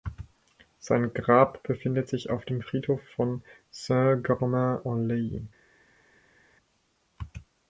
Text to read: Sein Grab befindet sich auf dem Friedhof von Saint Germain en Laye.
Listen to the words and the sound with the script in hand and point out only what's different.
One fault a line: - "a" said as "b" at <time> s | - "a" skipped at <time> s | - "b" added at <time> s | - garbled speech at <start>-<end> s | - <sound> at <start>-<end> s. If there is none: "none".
none